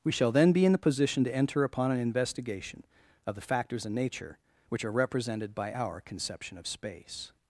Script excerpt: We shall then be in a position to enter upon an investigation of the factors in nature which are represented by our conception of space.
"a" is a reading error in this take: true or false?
true